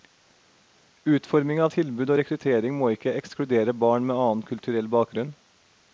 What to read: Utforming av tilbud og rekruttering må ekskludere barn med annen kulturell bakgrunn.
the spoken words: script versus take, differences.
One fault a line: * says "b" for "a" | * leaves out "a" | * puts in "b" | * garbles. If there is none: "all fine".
* puts in "ikke"